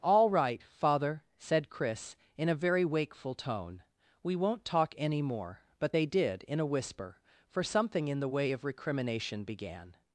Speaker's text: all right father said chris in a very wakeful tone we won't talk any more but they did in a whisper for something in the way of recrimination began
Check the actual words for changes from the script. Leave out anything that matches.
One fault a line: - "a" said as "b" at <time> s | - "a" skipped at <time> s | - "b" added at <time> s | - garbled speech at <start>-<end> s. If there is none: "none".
none